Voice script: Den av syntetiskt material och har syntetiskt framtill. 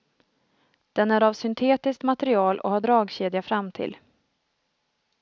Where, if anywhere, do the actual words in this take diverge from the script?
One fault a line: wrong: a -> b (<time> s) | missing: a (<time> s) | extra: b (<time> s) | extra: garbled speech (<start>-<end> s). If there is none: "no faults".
extra: är (1.1 s)
wrong: syntetiskt -> dragkedja (2.8 s)